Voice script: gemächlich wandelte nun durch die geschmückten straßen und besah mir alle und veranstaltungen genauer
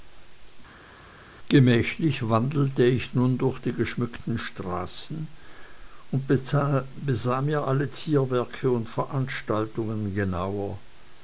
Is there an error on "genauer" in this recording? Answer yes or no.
no